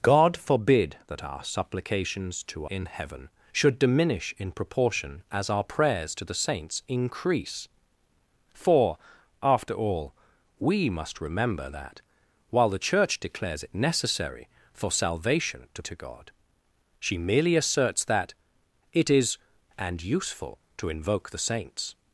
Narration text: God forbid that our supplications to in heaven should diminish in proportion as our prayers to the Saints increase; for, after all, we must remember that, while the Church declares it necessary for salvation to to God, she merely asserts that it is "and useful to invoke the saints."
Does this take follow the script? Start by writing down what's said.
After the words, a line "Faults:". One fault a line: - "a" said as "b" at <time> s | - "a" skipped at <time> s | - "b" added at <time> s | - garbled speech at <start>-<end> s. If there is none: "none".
God forbid that our supplications to in heaven should diminish in proportion as our prayers to the Saints increase; for, after all, we must remember that, while the Church declares it necessary for salvation to to God, she merely asserts that it is "and useful to invoke the saints."
Faults:
none